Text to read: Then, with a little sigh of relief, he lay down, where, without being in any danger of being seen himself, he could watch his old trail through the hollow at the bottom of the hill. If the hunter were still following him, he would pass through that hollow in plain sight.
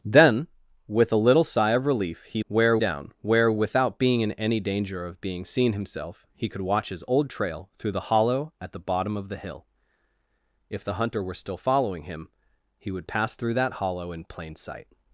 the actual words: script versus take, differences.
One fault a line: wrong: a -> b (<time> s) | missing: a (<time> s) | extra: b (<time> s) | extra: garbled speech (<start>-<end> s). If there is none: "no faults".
wrong: lay -> where (2.5 s)